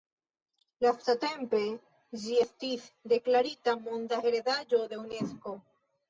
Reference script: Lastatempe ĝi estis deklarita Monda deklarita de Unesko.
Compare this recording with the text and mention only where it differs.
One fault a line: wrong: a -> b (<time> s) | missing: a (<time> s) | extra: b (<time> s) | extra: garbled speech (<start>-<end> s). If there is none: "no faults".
wrong: deklarita -> heredaĵo (4.3 s)